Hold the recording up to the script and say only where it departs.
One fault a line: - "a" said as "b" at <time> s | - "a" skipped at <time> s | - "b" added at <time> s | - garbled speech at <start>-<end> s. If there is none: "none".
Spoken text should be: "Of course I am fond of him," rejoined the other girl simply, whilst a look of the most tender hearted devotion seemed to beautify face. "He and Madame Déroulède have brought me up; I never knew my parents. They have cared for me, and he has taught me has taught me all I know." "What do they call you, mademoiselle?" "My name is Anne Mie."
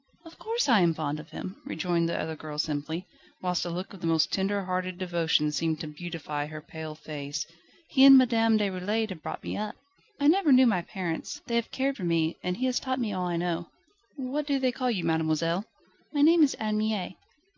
- "her pale" added at 6.4 s
- "has taught me" skipped at 13.1 s